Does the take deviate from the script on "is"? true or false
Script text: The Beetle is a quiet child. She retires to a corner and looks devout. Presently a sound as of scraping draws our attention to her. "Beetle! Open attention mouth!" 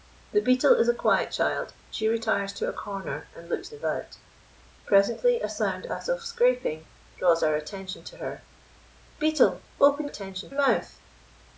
false